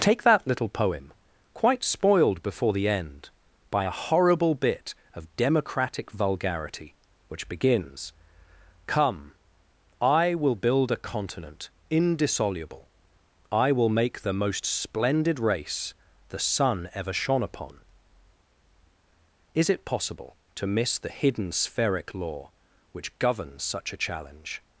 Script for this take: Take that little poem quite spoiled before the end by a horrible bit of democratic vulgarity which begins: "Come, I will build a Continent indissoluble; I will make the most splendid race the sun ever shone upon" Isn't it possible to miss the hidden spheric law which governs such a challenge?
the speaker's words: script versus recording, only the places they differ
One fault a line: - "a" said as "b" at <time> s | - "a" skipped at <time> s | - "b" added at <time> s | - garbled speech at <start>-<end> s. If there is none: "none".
- "Isn't" said as "Is" at 19.5 s